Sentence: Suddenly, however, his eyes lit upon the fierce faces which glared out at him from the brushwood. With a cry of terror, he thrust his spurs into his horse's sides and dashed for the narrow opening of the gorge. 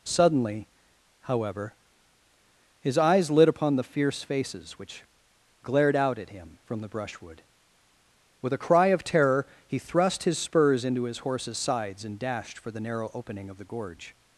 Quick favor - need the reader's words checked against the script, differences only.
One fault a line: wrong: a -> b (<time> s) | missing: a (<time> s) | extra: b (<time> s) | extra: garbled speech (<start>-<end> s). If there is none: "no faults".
no faults